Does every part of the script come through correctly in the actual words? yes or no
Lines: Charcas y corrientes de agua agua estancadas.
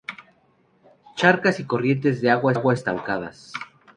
yes